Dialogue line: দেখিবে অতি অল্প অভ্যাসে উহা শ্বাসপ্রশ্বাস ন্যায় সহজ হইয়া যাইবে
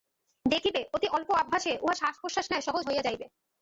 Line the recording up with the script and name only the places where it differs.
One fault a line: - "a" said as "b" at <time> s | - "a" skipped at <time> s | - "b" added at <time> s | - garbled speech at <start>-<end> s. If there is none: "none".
none